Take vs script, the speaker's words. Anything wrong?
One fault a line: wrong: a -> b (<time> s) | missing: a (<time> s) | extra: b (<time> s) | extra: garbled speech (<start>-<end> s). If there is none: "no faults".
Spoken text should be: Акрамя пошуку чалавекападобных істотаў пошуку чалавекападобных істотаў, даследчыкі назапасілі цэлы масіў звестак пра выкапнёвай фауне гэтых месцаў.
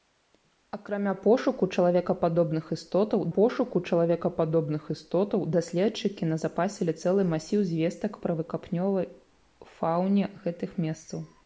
no faults